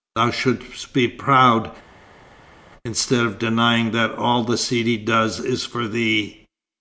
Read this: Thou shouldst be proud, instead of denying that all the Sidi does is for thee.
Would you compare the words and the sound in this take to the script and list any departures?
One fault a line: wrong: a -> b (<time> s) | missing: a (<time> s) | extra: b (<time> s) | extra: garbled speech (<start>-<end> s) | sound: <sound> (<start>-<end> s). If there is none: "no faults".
no faults